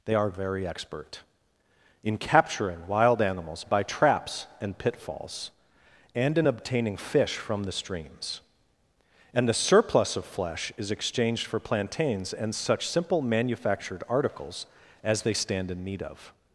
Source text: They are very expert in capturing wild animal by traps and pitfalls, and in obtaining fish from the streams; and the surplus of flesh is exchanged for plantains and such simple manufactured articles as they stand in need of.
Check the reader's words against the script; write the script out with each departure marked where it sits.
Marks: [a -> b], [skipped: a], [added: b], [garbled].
They are very expert in capturing wild [animal -> animals] by traps and pitfalls, and in obtaining fish from the streams; and the surplus of flesh is exchanged for plantains and such simple manufactured articles as they stand in need of.